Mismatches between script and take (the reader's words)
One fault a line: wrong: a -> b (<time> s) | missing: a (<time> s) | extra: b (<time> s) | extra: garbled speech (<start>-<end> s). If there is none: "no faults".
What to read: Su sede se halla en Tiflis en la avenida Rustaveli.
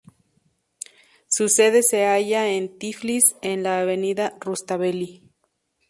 no faults